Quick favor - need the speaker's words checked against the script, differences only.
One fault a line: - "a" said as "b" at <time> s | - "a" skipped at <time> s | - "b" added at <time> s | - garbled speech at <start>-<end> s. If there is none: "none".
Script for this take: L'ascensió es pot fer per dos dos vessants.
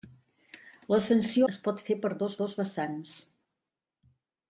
none